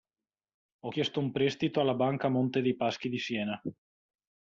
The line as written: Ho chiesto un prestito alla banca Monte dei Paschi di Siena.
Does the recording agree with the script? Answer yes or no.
yes